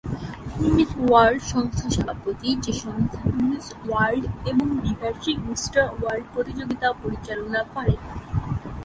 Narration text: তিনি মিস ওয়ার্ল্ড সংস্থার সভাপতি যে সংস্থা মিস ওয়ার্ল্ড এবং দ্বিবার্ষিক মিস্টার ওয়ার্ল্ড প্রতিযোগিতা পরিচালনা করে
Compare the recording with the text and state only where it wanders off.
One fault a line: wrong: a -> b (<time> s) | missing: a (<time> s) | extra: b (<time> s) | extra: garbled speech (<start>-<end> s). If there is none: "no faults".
no faults